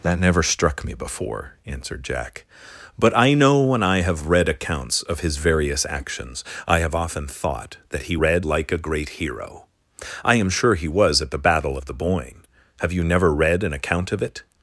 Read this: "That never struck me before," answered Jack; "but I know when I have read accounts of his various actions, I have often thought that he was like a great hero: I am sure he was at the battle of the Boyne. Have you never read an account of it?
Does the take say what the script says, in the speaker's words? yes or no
no